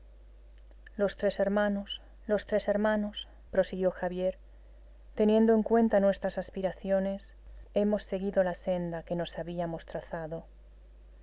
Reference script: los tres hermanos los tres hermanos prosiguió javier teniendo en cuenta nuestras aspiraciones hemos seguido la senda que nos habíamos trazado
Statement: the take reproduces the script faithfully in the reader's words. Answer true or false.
true